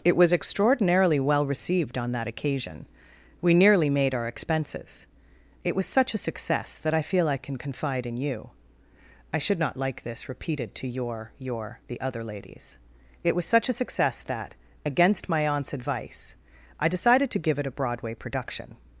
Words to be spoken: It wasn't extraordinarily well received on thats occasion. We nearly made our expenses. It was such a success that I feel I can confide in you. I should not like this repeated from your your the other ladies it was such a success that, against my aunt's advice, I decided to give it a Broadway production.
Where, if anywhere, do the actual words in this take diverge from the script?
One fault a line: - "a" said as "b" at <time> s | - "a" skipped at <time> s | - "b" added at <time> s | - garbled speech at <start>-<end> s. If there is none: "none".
- "wasn't" said as "was" at 0.2 s
- "thats" said as "that" at 2.1 s
- "from" said as "to" at 10.8 s